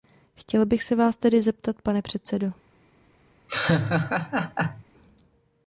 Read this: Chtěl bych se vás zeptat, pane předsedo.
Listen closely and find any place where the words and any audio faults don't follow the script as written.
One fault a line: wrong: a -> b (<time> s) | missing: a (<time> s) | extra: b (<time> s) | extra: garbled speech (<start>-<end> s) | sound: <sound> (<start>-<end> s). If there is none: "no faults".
extra: tedy (1.2 s)
sound: laugh (3.5-4.8 s)